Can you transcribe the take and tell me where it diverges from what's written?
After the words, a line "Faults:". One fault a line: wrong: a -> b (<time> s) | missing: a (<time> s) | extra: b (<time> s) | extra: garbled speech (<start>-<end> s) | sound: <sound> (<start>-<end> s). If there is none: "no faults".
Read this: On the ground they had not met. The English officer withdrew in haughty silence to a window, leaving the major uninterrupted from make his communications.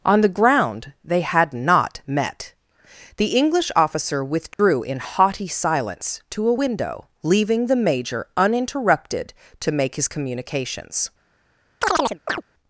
On the ground they had not met. The English officer withdrew in haughty silence to a window, leaving the major uninterrupted to make his communications.
Faults:
sound: dropout (4.5-4.6 s)
wrong: from -> to (9.6 s)
sound: chirp (11.8-12.4 s)